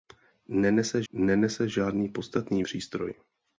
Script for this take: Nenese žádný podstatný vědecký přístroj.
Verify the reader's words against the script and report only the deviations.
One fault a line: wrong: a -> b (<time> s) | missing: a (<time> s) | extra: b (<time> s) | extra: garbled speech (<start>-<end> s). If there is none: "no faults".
extra: nenese (1.1 s)
missing: vědecký (2.6 s)